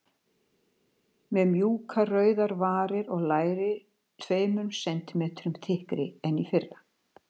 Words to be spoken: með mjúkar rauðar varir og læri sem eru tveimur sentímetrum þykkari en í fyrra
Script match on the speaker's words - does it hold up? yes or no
no